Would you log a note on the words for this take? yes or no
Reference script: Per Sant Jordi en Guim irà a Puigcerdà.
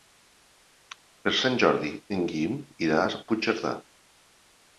no